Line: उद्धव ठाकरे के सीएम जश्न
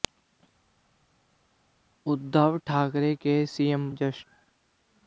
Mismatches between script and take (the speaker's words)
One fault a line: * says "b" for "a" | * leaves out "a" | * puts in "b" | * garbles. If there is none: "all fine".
all fine